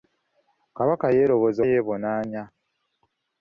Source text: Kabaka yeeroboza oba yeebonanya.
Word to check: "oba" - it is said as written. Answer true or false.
false